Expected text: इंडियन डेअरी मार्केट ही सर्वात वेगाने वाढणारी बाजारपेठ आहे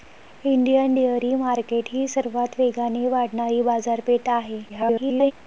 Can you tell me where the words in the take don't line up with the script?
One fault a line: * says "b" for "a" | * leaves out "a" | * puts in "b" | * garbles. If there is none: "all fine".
* garbles